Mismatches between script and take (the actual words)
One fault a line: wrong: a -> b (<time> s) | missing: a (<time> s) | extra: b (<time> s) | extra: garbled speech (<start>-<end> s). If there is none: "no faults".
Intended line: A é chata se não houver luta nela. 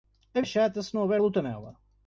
no faults